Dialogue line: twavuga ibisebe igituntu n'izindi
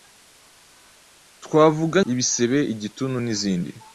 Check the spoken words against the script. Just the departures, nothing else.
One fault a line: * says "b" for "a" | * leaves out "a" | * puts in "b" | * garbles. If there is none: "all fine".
all fine